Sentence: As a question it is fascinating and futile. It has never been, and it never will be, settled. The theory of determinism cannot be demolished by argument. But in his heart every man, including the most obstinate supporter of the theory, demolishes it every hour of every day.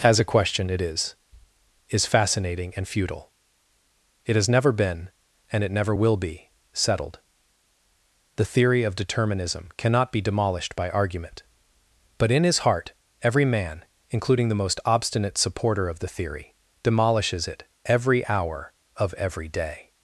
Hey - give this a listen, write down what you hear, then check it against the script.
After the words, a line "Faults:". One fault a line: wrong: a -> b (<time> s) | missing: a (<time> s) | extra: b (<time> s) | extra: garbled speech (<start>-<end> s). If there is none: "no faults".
As a question it is is fascinating and futile. It has never been, and it never will be, settled. The theory of determinism cannot be demolished by argument. But in his heart every man, including the most obstinate supporter of the theory, demolishes it every hour of every day.
Faults:
extra: is (1.9 s)